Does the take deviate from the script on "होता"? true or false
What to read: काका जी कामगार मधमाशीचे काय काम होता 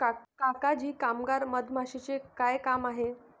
true